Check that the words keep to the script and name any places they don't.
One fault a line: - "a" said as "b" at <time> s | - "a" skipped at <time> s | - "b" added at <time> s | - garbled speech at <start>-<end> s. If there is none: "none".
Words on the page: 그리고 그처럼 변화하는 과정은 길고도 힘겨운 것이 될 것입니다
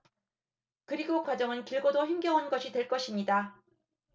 - "그처럼 변화하는" skipped at 1.2 s